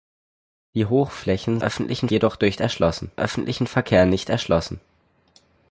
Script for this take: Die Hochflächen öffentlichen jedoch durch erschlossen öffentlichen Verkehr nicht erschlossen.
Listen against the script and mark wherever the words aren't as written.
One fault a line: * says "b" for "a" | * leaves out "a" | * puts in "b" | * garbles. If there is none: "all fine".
all fine